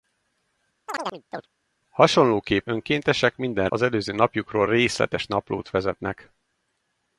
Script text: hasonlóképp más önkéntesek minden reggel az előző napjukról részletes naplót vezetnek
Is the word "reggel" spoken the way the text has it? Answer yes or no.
no